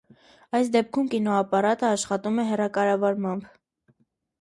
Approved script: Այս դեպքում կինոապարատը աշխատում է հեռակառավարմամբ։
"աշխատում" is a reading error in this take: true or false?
false